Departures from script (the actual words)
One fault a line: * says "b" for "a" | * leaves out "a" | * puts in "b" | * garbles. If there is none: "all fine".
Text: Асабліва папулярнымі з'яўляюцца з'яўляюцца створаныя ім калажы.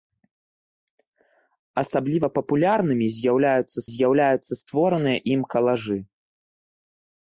all fine